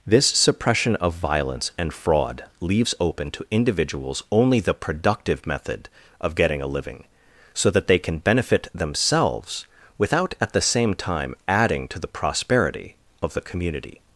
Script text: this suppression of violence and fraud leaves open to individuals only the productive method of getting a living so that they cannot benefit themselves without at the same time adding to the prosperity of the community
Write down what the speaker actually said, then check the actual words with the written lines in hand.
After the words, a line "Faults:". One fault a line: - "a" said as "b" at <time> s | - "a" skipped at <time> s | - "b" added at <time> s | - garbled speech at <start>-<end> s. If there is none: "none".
this suppression of violence and fraud leaves open to individuals only the productive method of getting a living so that they can benefit themselves without at the same time adding to the prosperity of the community
Faults:
- "cannot" said as "can" at 8.0 s